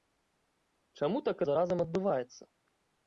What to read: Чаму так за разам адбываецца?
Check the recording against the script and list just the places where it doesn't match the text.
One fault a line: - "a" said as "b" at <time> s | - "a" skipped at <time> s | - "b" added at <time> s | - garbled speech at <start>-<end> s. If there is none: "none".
none